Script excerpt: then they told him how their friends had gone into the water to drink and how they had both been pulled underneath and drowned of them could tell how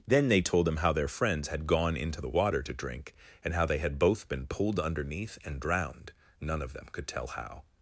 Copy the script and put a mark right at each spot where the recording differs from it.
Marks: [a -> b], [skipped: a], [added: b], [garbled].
then they told him how their friends had gone into the water to drink and how they had both been pulled underneath and drowned [added: none] of them could tell how